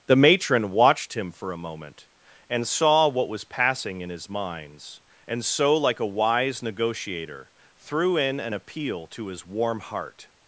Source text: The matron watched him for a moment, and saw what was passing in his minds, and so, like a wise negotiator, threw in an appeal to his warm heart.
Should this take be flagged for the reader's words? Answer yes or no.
no